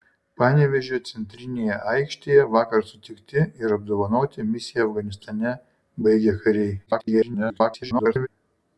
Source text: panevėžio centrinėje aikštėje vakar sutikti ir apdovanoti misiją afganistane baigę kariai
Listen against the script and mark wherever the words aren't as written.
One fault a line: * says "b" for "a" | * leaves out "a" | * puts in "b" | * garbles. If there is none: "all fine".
* garbles